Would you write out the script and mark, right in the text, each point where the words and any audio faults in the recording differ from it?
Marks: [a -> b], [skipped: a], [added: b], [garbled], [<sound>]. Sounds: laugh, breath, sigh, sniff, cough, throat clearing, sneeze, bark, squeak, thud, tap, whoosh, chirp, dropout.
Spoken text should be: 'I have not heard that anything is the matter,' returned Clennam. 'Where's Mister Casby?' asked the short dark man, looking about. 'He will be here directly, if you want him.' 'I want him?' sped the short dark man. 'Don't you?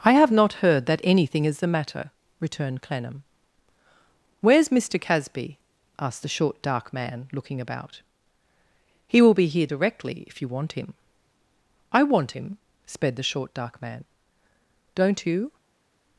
'I have not heard that anything is the matter,' returned Clennam. 'Where's Mister Casby?' asked the short dark man, looking about. 'He will be here directly, if you want him.' 'I want him?' sped the short dark man. 'Don't you?